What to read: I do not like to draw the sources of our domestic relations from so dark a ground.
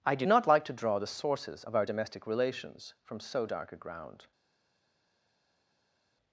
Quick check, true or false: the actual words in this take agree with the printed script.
true